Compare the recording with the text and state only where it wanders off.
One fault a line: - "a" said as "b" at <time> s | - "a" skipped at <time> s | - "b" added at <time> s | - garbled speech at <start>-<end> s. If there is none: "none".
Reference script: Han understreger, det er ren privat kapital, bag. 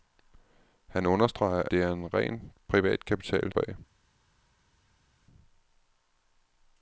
none